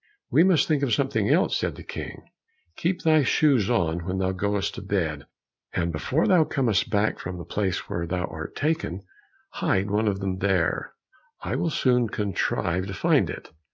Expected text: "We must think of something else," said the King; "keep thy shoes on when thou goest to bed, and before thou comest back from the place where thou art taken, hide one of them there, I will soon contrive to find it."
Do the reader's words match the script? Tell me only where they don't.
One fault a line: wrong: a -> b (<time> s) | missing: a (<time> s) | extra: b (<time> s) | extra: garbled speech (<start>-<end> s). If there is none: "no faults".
no faults